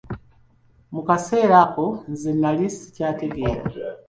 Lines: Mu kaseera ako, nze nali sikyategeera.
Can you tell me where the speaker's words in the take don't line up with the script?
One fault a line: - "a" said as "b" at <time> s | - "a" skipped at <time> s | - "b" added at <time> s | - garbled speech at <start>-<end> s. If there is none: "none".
none